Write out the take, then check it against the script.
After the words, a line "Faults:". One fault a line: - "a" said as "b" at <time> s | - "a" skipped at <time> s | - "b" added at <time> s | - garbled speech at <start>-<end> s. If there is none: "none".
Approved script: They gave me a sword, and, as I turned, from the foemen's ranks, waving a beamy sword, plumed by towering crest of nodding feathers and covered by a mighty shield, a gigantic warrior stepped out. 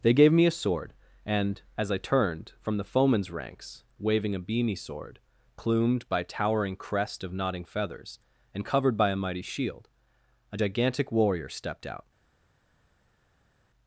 They gave me a sword, and, as I turned, from the foemen's ranks, waving a beamy sword, plumed by towering crest of nodding feathers and covered by a mighty shield, a gigantic warrior stepped out.
Faults:
none